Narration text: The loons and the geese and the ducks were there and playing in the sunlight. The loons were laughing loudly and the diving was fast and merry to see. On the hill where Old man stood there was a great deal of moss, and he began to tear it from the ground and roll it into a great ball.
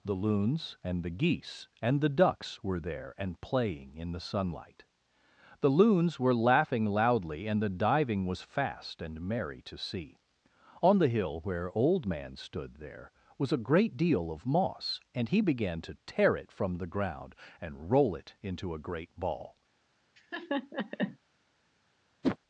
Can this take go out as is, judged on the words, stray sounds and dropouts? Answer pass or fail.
fail